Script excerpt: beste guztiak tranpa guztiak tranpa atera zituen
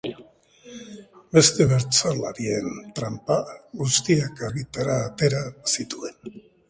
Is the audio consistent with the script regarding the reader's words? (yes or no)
no